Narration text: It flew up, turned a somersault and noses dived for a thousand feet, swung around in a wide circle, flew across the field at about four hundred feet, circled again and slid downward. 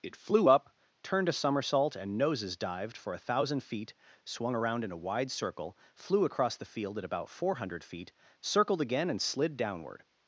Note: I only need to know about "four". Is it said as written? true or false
true